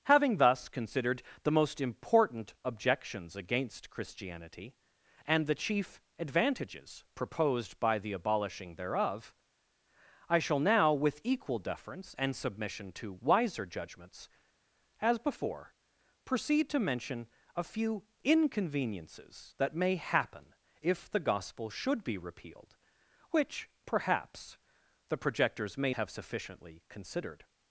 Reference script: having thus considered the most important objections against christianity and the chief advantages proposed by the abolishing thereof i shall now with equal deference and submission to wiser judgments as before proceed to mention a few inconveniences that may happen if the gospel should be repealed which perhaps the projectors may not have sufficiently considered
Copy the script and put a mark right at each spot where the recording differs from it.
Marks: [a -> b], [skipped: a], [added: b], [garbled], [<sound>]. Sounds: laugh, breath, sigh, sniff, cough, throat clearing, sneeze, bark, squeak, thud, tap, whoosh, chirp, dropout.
having thus considered the most important objections against christianity and the chief advantages proposed by the abolishing thereof i shall now with equal deference and submission to wiser judgments as before proceed to mention a few inconveniences that may happen if the gospel should be repealed which perhaps the projectors may [skipped: not] have sufficiently considered